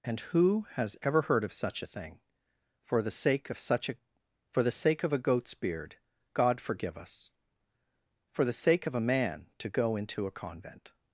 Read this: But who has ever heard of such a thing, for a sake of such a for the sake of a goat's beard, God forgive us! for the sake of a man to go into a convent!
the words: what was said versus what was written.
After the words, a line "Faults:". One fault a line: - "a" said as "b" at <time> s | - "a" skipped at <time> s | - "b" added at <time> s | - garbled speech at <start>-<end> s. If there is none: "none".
And who has ever heard of such a thing, for the sake of such a for the sake of a goat's beard, God forgive us! for the sake of a man to go into a convent!
Faults:
- "But" said as "And" at 0.0 s
- "a" said as "the" at 3.0 s